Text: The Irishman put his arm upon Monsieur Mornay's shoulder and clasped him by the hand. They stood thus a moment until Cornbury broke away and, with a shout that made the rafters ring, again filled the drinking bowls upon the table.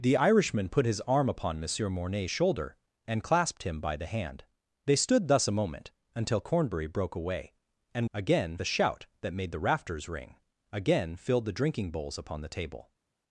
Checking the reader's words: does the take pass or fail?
fail